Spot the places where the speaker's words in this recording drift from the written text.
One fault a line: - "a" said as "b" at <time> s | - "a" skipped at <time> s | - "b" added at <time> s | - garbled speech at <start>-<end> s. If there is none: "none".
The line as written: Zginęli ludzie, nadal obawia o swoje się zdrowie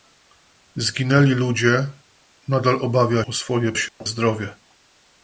none